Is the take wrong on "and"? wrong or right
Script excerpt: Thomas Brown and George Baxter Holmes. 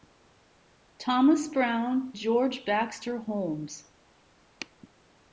wrong